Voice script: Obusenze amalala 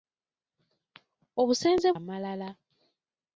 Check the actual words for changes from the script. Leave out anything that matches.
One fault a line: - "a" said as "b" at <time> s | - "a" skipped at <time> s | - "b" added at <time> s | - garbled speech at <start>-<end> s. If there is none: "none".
none